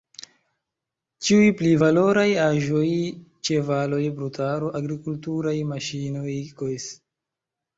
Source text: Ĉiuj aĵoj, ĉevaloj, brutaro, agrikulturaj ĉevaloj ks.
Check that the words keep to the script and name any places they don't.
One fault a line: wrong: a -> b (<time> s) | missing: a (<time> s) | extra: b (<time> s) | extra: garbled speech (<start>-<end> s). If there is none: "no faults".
extra: pli valoraj (1.6 s)
wrong: ĉevaloj -> maŝinoj (5.7 s)